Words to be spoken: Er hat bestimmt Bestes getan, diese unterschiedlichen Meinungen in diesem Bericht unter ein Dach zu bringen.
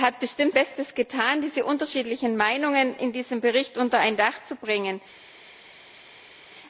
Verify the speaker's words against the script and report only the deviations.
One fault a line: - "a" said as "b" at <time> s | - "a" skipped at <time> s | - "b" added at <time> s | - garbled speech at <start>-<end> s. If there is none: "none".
none